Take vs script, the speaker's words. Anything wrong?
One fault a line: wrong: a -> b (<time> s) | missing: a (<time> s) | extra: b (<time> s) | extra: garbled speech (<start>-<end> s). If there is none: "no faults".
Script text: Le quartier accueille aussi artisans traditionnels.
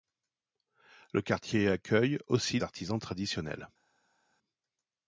no faults